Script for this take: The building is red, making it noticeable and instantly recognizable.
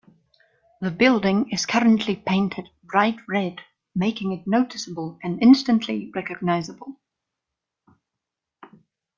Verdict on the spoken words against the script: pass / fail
fail